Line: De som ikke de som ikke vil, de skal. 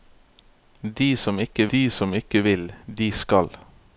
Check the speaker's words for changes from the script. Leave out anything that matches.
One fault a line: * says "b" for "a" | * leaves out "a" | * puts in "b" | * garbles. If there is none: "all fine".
all fine